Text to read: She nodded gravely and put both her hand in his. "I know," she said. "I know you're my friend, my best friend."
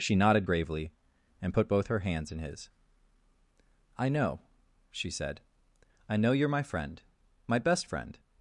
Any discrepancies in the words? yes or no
yes